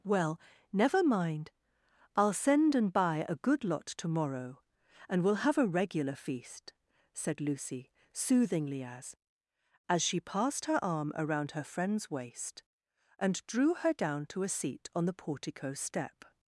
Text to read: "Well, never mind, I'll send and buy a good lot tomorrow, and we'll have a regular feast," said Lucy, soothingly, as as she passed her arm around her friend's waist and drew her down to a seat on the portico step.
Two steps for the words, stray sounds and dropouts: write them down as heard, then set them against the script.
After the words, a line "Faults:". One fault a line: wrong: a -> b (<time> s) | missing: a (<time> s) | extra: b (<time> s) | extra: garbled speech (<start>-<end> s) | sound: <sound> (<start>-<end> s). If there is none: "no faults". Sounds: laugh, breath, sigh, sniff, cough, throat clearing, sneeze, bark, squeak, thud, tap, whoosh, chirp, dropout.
"Well, never mind, I'll send and buy a good lot tomorrow, and we'll have a regular feast," said Lucy, soothingly, as as she passed her arm around her friend's waist and drew her down to a seat on the portico step.
Faults:
no faults